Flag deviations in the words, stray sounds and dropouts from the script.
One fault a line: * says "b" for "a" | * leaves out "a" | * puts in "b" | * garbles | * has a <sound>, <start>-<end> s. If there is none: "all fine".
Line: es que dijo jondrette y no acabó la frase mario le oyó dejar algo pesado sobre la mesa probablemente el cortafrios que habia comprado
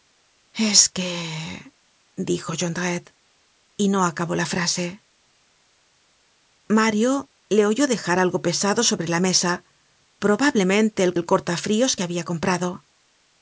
* puts in "el"